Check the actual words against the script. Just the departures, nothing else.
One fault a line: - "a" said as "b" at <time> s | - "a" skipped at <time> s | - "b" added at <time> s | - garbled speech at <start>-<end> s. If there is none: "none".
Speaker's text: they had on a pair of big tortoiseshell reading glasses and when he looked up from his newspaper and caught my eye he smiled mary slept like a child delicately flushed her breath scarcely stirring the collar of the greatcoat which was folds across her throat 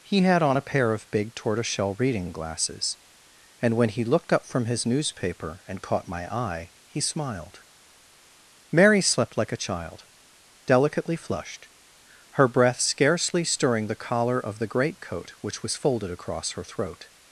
- "they" said as "he" at 0.0 s
- "folds" said as "folded" at 15.8 s